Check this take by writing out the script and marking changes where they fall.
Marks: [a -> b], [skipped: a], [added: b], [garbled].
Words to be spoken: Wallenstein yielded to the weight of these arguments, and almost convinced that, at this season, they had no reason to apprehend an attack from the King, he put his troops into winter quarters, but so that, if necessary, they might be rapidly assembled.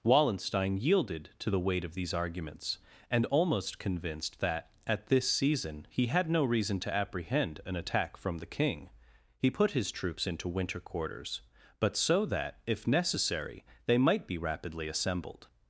Wallenstein yielded to the weight of these arguments, and almost convinced that, at this season, [they -> he] had no reason to apprehend an attack from the King, he put his troops into winter quarters, but so that, if necessary, they might be rapidly assembled.